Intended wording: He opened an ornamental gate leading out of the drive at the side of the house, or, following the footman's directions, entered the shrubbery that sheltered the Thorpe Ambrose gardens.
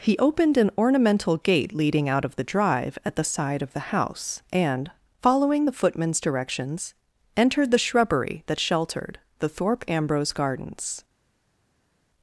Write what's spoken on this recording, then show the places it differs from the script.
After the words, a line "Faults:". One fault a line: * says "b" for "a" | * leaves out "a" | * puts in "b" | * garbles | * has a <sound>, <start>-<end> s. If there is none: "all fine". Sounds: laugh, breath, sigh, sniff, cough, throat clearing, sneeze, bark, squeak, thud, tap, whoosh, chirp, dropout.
He opened an ornamental gate leading out of the drive at the side of the house, and, following the footman's directions, entered the shrubbery that sheltered the Thorpe Ambrose gardens.
Faults:
* says "and" for "or"